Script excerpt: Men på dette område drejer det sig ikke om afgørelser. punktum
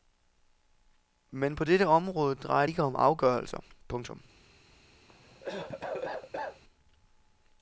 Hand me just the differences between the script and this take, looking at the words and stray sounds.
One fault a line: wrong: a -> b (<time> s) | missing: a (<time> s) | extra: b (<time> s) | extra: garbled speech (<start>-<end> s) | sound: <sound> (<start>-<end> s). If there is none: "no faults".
missing: det sig (2.7 s)
sound: cough (5.1-6.6 s)